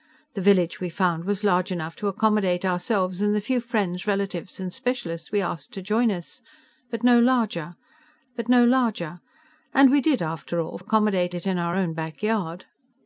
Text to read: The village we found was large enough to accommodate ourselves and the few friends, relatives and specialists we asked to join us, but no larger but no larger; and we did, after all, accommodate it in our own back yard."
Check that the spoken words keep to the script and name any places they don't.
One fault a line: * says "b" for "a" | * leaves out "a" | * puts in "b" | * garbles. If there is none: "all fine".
all fine